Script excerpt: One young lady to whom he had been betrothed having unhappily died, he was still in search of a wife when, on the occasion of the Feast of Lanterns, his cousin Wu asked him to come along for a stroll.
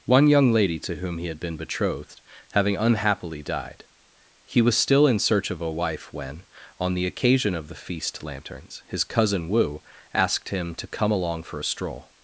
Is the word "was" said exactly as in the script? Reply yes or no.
yes